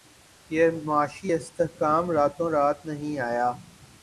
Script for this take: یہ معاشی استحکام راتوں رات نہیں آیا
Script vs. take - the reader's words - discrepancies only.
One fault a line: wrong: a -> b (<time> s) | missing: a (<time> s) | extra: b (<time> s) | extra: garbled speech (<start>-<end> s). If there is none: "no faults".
no faults